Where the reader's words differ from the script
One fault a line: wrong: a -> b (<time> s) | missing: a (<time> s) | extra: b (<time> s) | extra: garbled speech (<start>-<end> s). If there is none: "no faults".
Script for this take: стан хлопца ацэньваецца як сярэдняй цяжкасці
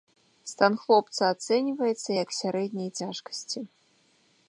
no faults